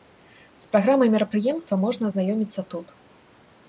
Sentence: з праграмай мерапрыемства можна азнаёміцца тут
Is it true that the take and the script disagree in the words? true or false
false